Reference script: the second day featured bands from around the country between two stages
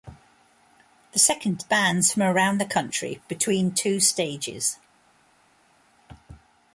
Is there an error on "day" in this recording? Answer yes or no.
yes